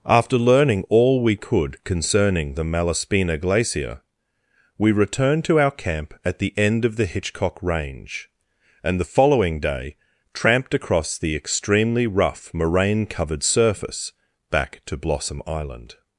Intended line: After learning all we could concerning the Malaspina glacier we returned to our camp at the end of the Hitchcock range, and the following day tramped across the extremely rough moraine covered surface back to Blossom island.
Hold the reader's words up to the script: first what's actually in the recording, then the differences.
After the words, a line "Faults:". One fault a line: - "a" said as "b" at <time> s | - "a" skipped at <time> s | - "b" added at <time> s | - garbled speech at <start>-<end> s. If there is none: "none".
After learning all we could concerning the Malaspina glacier we returned to our camp at the end of the Hitchcock range, and the following day tramped across the extremely rough moraine covered surface back to Blossom island.
Faults:
none